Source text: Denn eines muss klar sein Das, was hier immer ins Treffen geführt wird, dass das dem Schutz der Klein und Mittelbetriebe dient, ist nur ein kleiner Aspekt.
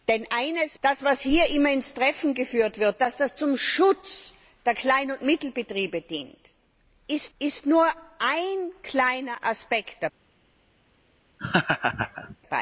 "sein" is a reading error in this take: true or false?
true